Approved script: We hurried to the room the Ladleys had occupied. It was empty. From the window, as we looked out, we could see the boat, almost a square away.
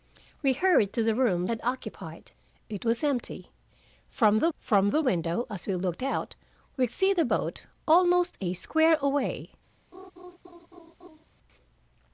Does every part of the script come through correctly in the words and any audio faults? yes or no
no